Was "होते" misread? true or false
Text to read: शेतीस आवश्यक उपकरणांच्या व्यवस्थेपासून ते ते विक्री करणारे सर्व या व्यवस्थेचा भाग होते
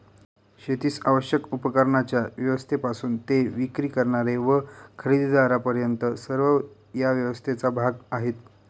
true